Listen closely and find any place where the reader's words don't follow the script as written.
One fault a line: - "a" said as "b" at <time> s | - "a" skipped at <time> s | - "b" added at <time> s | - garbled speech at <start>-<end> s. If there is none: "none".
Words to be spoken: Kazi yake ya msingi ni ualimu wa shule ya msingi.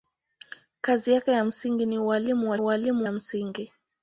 - "shule" said as "ualimu" at 2.6 s